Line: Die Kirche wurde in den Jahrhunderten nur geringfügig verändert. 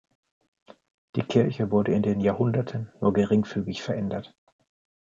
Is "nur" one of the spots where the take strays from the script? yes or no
no